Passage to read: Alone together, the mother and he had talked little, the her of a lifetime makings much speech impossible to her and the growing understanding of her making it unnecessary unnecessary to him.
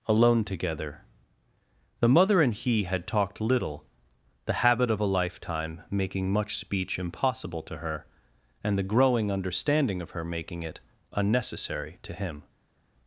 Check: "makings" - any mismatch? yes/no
yes